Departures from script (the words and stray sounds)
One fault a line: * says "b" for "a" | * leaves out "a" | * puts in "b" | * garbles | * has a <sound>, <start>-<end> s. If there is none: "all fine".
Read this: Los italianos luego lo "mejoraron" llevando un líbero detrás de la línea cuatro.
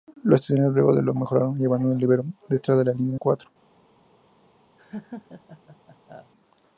* has a laugh, 4.8-6.3 s